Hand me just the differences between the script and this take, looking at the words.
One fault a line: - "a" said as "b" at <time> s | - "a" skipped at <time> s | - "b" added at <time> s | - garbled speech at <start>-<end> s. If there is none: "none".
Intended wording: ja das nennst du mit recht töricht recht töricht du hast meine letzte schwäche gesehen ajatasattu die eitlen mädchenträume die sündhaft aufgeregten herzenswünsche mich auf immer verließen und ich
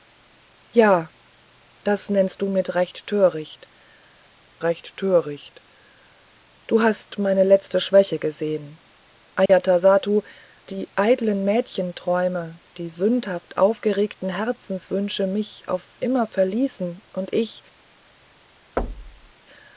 none